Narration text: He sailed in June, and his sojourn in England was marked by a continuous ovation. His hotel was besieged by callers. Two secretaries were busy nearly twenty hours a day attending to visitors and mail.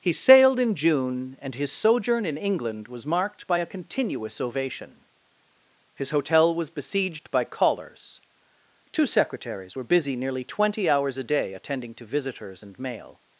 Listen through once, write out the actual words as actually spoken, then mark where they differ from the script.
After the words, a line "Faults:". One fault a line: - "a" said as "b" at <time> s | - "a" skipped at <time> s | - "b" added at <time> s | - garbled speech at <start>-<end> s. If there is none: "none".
He sailed in June, and his sojourn in England was marked by a continuous ovation. His hotel was besieged by callers. Two secretaries were busy nearly twenty hours a day attending to visitors and mail.
Faults:
none